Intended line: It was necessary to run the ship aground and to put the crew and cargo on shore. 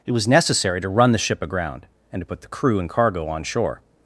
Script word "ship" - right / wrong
right